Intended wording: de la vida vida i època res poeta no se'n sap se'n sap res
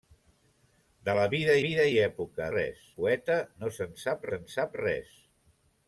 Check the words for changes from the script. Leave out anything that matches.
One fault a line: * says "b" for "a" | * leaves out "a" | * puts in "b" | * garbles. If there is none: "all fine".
all fine